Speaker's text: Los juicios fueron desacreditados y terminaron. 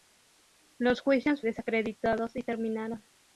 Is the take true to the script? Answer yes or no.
no